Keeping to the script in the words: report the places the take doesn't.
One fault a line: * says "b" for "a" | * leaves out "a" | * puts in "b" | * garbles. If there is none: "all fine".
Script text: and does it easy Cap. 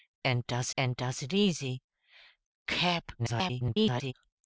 * puts in "and does"
* garbles